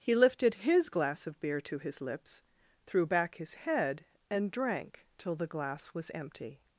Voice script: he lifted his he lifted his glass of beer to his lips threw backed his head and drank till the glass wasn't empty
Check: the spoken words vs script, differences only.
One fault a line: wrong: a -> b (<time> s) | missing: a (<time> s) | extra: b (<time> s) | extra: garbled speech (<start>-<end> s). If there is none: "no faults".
missing: he lifted his (0.9 s)
wrong: backed -> back (3.0 s)
wrong: wasn't -> was (5.9 s)